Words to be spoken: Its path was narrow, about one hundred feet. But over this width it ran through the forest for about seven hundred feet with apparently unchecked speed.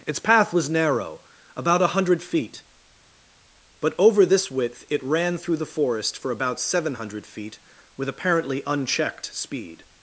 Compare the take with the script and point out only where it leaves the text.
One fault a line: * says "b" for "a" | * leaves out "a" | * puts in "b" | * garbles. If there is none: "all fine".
* says "a" for "one"